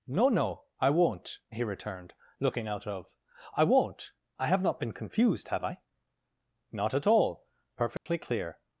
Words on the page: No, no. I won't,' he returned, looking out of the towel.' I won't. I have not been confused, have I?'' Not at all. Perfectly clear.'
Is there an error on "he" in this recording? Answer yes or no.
no